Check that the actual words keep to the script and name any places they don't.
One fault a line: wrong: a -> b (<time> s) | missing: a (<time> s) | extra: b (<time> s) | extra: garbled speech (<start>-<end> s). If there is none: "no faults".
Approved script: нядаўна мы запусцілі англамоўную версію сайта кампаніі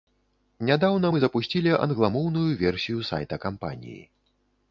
no faults